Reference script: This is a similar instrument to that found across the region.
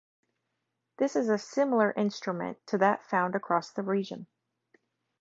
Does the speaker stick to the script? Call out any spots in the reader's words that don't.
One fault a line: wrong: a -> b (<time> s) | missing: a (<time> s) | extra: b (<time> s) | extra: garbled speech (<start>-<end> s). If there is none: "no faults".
no faults